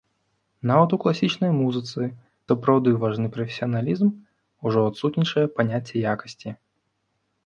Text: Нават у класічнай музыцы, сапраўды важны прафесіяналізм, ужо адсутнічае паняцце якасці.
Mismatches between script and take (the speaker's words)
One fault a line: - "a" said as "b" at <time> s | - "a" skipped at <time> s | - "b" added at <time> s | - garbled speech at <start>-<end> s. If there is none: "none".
none